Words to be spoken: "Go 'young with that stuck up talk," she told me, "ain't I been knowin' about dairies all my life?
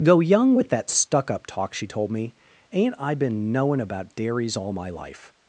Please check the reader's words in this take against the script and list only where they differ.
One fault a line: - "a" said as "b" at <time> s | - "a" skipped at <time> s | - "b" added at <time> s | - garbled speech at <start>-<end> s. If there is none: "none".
none